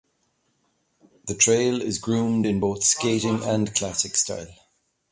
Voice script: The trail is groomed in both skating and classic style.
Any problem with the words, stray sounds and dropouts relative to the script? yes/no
no